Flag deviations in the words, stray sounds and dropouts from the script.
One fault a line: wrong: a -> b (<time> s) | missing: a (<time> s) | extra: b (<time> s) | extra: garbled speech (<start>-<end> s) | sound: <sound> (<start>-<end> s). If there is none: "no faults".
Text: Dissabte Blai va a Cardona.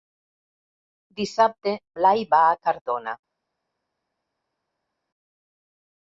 no faults